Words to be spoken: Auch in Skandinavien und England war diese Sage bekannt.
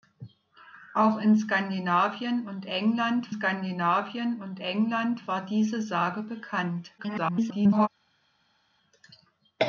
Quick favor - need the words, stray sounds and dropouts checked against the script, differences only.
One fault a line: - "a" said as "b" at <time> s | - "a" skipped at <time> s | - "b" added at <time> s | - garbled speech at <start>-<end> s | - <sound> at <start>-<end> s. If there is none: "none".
- "Skandinavien und England" added at 3.3 s
- garbled speech at 7.0-7.9 s